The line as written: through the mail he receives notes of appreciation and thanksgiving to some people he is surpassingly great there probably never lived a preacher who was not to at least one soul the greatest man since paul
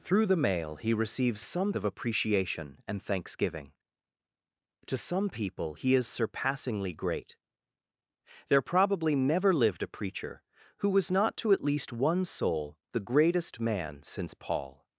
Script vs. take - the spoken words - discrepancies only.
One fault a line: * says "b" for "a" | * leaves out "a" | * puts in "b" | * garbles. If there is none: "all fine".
* says "some" for "notes"